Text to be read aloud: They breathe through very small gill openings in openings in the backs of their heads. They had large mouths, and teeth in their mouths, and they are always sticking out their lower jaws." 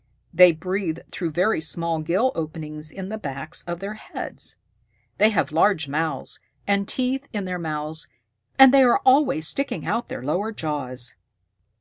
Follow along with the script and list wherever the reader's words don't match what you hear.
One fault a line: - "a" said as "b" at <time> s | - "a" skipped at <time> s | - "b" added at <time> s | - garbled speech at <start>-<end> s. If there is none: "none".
- "openings in" skipped at 3.1 s
- "had" said as "have" at 5.3 s